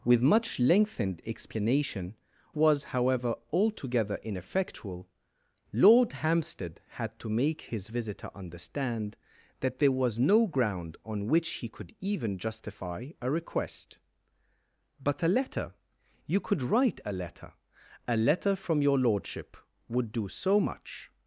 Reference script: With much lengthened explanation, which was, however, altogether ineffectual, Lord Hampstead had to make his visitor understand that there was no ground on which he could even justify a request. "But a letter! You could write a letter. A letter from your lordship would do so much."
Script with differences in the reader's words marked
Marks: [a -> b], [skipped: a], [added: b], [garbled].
With much lengthened explanation, [skipped: which] was, however, altogether ineffectual, Lord Hampstead had to make his visitor understand that there was no ground on which he could even justify a request. "But a letter! You could write a letter. A letter from your lordship would do so much."